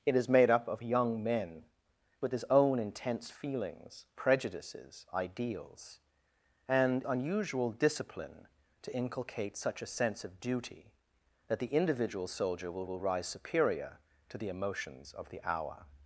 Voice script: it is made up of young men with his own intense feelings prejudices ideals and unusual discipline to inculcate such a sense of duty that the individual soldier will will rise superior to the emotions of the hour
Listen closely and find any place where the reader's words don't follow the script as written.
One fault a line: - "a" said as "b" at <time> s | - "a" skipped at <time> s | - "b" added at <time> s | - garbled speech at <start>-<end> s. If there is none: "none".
none